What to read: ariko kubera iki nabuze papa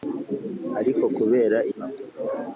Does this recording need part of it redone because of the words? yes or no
yes